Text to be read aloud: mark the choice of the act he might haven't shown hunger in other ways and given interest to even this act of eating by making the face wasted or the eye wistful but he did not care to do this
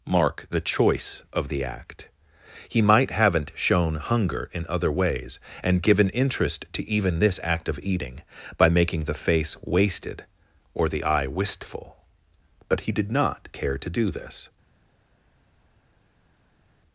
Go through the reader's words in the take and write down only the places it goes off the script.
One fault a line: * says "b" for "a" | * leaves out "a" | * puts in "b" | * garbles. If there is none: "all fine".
all fine